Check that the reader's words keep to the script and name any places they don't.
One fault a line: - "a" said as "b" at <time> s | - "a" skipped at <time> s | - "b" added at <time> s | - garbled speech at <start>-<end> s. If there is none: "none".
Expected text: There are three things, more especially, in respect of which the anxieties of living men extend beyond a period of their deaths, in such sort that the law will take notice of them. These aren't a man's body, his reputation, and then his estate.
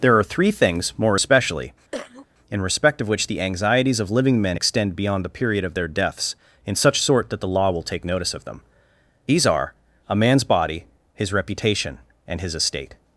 - "a" said as "the" at 5.2 s
- "aren't" said as "are" at 9.5 s
- "then" skipped at 12.4 s